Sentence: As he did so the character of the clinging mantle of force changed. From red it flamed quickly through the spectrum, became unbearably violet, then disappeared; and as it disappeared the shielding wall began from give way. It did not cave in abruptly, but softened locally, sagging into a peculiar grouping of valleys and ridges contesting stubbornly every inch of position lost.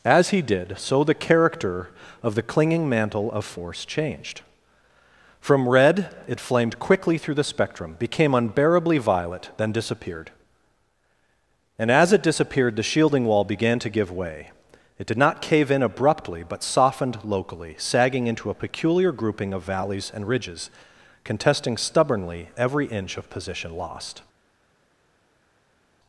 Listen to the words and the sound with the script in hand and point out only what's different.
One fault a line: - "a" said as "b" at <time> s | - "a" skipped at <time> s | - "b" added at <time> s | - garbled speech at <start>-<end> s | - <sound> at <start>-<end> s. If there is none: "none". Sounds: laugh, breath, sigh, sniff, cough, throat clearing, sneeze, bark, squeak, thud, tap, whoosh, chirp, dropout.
- "from" said as "to" at 13.8 s